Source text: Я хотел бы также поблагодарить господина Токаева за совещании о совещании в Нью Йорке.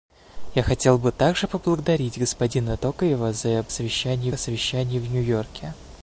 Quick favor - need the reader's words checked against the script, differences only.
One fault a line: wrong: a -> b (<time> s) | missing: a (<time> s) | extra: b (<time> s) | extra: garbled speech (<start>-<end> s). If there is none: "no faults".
no faults